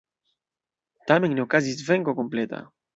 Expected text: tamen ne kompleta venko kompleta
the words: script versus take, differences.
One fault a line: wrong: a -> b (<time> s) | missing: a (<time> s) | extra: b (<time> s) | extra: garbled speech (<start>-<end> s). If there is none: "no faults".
wrong: kompleta -> okazis (1.5 s)